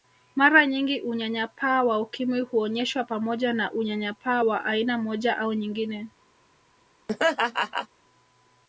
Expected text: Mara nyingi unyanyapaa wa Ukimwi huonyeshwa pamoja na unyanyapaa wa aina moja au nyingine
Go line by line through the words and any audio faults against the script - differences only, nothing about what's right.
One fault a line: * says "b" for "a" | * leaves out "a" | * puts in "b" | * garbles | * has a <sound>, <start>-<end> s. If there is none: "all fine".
* has a laugh, 7.1-7.9 s